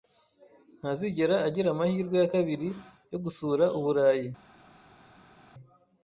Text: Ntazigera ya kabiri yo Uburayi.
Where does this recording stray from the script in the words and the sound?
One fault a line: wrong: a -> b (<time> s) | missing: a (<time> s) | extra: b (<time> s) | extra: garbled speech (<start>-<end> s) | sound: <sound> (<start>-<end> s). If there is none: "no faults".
extra: agira amahirwe (1.5 s)
extra: gusura (3.2 s)